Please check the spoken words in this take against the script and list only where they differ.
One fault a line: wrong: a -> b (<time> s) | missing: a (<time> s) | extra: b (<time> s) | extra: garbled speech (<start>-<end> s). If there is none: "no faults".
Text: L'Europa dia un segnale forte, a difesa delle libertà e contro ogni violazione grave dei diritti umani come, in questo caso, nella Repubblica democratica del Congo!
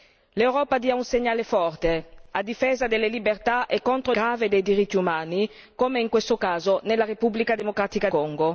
missing: ogni violazione (4.1 s)
missing: del (8.1 s)